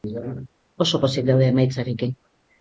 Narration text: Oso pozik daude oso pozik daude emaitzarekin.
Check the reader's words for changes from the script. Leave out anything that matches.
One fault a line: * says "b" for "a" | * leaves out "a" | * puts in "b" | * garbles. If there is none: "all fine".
* leaves out "oso pozik daude"